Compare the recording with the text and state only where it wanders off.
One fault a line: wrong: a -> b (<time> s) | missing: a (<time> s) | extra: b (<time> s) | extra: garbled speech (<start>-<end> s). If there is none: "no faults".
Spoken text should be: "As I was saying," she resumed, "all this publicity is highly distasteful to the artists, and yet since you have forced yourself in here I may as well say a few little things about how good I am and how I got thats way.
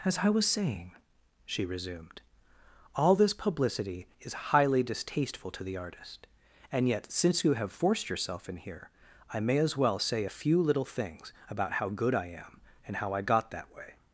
wrong: artists -> artist (5.8 s)
wrong: thats -> that (13.5 s)